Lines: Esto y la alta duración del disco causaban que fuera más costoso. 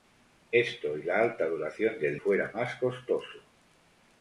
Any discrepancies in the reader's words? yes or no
yes